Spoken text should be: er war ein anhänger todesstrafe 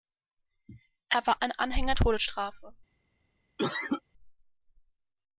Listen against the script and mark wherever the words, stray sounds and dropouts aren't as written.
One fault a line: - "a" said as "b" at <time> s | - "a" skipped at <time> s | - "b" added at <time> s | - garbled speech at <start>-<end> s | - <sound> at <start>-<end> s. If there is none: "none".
- cough at 3.6-4.0 s